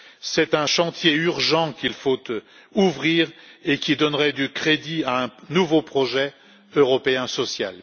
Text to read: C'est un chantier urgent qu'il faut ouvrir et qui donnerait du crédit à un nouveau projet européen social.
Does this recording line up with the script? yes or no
yes